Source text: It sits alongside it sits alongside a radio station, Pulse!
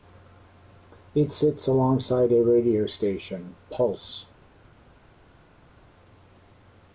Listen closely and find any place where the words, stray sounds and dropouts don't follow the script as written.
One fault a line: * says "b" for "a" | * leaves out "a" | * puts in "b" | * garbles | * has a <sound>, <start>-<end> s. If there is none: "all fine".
* leaves out "it sits alongside"